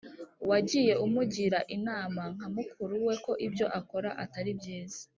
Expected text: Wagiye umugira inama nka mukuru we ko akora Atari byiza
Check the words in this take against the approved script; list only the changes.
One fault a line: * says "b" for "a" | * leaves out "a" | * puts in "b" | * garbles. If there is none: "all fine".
* puts in "ibyo"